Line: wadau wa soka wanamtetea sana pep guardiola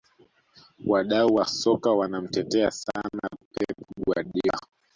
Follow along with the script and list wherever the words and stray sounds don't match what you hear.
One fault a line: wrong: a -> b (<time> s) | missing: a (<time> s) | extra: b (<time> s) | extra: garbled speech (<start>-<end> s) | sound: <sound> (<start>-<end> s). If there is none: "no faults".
no faults